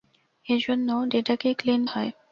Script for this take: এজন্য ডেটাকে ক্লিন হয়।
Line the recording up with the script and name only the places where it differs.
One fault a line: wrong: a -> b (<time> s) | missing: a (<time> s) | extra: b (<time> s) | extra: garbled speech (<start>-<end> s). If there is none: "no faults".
no faults